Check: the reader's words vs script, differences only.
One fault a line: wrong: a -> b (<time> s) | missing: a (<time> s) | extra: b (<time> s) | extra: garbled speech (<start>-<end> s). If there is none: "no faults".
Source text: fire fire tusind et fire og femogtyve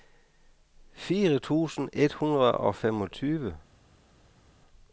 missing: fire (1.4 s)
wrong: fire -> hundrede (2.1 s)